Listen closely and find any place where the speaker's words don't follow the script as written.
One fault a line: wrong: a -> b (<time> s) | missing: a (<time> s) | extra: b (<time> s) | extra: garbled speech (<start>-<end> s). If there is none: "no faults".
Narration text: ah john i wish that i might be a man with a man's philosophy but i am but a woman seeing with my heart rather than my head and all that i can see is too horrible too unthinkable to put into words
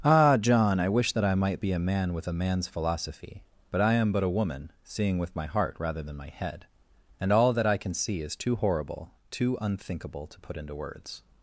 no faults